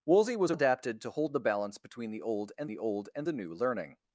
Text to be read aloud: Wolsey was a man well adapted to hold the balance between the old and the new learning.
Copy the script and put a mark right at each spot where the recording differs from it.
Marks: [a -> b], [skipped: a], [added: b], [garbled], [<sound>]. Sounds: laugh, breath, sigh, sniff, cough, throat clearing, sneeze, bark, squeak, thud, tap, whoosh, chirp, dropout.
Wolsey was a [skipped: man well] adapted to hold the balance between the old and the [added: old and the] new learning.